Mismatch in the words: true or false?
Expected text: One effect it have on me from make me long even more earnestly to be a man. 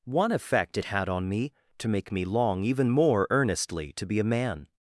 true